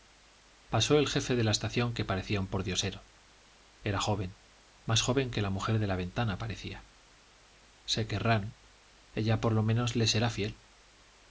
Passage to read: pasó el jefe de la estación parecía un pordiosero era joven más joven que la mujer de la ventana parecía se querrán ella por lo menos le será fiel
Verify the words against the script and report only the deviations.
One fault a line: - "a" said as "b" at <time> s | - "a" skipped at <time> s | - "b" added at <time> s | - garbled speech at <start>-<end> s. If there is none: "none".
- "que" added at 1.9 s